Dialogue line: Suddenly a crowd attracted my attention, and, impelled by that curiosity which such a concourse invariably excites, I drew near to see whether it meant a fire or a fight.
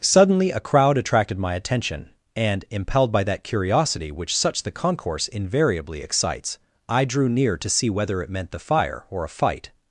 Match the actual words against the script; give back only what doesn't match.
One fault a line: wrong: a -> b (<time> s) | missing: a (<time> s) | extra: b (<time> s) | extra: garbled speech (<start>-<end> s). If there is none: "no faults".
wrong: a -> the (4.6 s)
wrong: a -> the (8.5 s)